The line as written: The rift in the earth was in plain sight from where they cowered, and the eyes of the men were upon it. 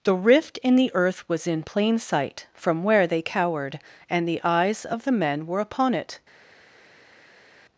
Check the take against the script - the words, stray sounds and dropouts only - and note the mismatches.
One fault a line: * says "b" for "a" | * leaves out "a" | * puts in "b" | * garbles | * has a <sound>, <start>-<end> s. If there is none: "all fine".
all fine